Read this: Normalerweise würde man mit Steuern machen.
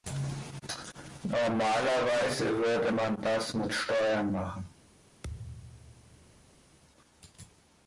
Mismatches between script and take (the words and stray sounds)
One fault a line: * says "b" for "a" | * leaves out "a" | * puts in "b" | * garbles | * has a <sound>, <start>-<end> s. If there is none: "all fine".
* puts in "das"
* has a thud, 5.2-6.5 s